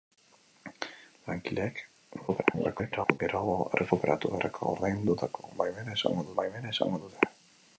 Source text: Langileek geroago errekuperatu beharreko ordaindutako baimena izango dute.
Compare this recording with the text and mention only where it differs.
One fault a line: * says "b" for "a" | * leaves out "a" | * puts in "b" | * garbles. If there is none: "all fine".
* garbles
* puts in "baimena izango"